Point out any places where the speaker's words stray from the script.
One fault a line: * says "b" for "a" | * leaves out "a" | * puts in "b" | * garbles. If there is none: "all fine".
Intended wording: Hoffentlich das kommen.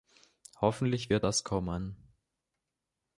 * puts in "wird"